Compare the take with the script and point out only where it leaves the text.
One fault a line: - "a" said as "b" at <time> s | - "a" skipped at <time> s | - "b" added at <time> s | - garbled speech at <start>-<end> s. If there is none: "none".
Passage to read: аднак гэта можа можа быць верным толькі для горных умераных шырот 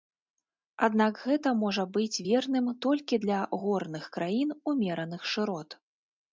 - "можа" skipped at 1.9 s
- "краін" added at 4.2 s